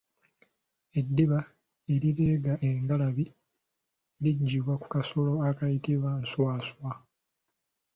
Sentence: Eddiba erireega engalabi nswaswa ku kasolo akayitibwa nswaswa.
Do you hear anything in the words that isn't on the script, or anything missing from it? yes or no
yes